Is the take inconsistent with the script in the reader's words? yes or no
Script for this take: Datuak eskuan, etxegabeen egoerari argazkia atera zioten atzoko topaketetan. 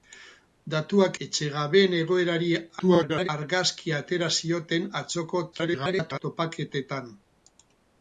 yes